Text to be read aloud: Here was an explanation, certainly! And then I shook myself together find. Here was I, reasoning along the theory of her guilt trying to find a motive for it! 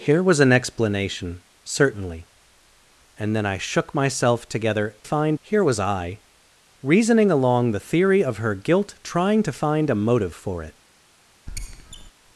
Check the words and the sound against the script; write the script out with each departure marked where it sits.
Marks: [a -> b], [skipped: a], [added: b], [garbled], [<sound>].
Here was an explanation, certainly! And then I shook myself together find. Here was I, reasoning along the theory of her guilt trying to find a motive for it! [squeak]